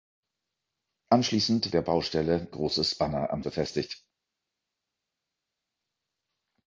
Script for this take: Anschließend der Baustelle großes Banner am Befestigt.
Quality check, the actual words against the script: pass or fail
pass